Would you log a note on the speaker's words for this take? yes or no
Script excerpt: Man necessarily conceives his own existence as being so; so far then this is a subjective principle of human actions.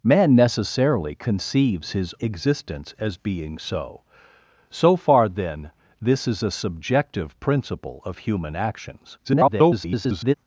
yes